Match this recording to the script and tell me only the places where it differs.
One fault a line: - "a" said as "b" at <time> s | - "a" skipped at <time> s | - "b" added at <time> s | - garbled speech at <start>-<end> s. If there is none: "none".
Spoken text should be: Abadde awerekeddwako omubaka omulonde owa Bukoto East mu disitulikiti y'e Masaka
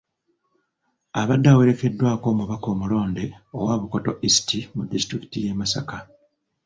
none